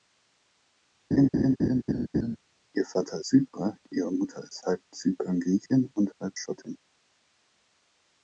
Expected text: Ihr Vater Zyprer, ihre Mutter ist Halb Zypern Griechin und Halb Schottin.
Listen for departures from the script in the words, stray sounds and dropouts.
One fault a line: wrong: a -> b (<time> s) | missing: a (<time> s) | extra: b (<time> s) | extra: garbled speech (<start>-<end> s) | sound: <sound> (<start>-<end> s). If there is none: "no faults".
sound: laugh (1.1-2.4 s)